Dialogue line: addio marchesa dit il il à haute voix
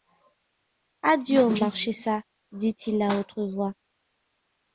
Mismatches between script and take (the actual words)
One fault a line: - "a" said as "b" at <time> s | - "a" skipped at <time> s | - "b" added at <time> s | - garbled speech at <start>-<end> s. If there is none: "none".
- "il" skipped at 3.0 s